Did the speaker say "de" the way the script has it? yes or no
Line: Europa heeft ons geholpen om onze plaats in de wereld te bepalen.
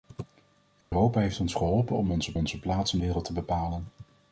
no